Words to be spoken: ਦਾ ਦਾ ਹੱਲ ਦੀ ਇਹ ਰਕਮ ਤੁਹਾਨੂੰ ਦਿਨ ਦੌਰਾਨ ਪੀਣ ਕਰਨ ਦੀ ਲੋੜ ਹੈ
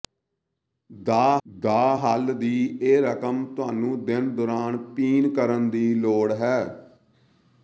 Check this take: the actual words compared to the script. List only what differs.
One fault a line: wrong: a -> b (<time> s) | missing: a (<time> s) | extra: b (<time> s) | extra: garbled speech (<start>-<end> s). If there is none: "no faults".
no faults